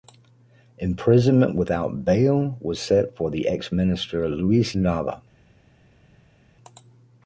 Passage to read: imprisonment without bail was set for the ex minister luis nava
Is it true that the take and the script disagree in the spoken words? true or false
false